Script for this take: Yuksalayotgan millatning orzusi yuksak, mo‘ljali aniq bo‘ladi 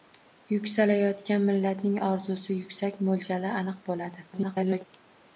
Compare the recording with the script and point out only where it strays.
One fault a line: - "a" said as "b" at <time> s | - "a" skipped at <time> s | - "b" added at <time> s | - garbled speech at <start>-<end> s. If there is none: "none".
- garbled speech at 4.3-4.9 s